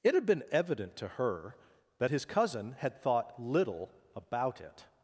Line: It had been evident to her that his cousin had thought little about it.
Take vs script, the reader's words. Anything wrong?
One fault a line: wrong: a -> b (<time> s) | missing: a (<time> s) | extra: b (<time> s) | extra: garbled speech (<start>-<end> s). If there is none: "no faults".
no faults